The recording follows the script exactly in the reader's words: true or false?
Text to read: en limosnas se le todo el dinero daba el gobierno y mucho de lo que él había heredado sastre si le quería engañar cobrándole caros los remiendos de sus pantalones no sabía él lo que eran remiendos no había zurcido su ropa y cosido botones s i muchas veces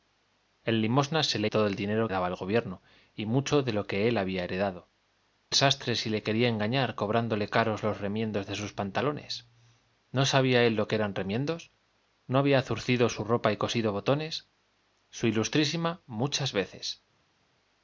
true